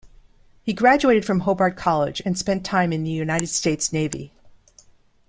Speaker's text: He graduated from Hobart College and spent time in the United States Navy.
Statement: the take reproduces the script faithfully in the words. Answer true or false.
true